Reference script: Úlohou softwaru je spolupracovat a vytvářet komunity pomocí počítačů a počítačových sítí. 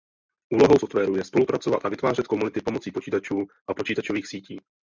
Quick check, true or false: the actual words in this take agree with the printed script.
true